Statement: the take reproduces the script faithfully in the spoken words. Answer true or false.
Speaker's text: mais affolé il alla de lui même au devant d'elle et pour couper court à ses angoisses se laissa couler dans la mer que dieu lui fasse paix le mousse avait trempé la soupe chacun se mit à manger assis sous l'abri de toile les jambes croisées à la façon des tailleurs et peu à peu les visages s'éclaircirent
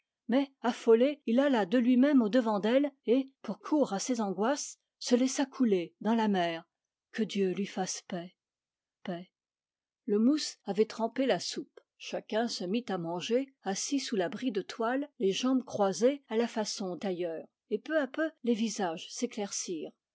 false